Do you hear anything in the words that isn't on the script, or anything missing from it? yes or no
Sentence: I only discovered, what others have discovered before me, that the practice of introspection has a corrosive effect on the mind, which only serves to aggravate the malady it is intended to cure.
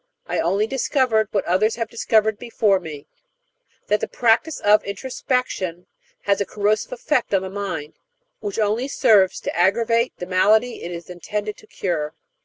no